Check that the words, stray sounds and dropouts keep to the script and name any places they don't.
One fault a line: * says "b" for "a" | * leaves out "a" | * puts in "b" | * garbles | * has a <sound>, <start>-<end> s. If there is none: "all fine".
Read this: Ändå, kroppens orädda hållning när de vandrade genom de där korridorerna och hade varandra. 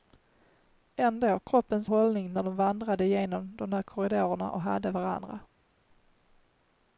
* leaves out "orädda"